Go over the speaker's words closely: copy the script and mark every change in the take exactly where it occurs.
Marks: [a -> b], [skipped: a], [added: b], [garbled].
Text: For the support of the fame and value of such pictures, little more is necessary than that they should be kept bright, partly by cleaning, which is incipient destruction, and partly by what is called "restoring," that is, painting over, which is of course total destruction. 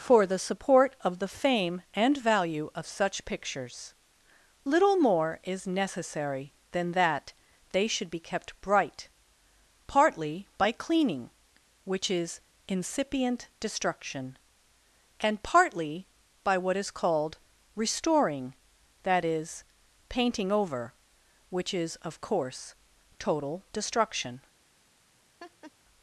For the support of the fame and value of such pictures, little more is necessary than that they should be kept bright, partly by cleaning, which is incipient destruction, and partly by what is called "restoring," that is, painting over, which is of course total destruction.